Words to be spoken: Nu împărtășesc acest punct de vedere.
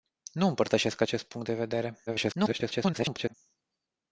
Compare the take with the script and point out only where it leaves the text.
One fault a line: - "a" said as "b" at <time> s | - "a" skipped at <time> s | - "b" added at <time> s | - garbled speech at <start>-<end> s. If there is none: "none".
- garbled speech at 2.1-3.3 s